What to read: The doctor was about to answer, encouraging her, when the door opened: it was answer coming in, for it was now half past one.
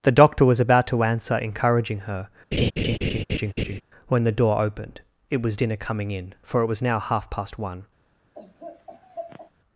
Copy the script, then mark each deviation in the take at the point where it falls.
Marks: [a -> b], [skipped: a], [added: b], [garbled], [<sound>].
The doctor was about to answer, encouraging her, [laugh] when the door opened: it was [answer -> dinner] coming in, for it was now half past one. [laugh]